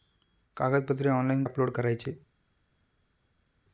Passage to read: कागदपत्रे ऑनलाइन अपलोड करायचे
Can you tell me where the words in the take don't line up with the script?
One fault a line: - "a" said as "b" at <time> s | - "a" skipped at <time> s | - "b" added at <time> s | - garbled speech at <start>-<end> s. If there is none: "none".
none